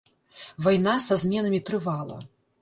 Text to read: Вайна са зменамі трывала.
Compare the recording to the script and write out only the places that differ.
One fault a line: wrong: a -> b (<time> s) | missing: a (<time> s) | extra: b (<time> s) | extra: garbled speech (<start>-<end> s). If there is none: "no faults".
no faults